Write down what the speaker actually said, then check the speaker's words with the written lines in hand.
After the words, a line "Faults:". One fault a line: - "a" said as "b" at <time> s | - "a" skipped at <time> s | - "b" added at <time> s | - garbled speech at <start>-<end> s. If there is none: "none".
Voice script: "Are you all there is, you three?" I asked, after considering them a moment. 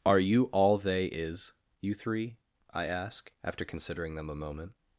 "Are you all they is, you three?" I ask, after considering them a moment.
Faults:
- "there" said as "they" at 0.8 s
- "asked" said as "ask" at 2.9 s